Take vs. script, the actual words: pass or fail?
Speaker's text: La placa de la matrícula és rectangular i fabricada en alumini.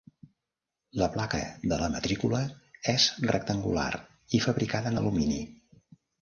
pass